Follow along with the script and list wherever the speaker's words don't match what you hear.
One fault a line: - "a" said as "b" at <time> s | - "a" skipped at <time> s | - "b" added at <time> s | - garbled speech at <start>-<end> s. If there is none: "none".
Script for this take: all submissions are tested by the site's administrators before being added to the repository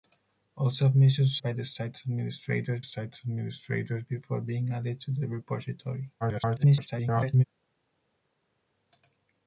- "are tested by the" said as "by the site's administrators" at 1.4 s
- garbled speech at 6.2-7.4 s